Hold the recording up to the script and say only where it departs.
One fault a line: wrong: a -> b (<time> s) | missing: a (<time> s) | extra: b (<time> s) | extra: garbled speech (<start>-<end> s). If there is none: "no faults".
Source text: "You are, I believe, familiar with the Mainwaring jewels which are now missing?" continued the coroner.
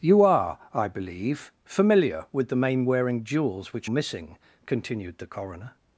missing: are now (3.9 s)